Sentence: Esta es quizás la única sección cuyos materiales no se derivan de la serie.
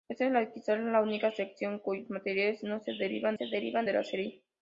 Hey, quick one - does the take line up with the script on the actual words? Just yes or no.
no